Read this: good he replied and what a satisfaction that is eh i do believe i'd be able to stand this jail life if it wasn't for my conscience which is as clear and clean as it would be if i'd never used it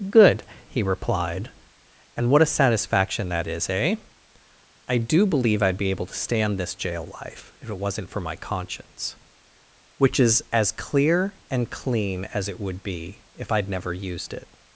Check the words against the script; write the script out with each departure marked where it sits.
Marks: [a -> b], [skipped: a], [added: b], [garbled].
good he replied and what a satisfaction that is eh i do believe i'd be able to stand this jail life if it wasn't for my conscience which is as clear and clean as it would be if i'd never used it